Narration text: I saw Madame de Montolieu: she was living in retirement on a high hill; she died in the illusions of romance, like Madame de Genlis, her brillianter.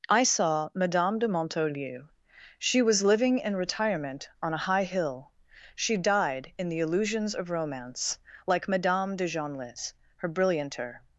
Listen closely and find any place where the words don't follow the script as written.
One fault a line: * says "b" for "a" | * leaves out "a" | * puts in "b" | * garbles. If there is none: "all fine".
all fine